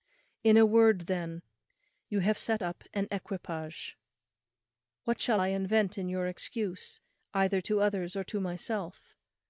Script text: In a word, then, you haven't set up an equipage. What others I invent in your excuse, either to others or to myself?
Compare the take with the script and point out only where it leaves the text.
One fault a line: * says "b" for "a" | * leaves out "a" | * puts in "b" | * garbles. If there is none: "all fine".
* says "have" for "haven't"
* says "shall" for "others"